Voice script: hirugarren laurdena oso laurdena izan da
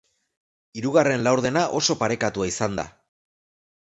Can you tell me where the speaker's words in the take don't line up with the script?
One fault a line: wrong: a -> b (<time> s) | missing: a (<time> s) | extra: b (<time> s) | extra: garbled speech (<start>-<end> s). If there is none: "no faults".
wrong: laurdena -> parekatua (2.0 s)